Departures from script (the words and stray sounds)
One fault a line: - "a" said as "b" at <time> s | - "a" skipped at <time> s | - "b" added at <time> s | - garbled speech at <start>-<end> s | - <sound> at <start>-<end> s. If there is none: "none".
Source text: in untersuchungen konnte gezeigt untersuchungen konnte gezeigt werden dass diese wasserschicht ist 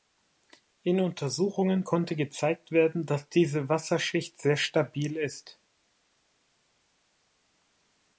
- "untersuchungen konnte gezeigt" skipped at 2.7 s
- "sehr stabil" added at 4.4 s